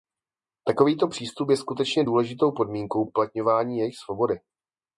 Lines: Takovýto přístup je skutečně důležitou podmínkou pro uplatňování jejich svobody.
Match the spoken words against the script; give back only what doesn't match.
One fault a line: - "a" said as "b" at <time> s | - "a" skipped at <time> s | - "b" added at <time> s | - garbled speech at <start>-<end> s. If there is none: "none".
- "pro" skipped at 3.0 s